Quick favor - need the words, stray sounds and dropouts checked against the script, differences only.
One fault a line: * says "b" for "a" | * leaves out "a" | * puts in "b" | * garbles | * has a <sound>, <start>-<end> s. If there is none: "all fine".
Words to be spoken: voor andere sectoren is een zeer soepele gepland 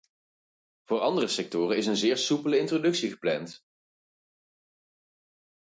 * puts in "introductie"